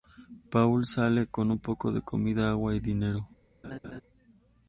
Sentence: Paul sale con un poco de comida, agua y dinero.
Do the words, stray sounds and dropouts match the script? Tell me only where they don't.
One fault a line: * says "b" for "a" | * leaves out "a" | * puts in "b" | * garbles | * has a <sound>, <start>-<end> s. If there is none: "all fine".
* has a laugh, 3.6-4.0 s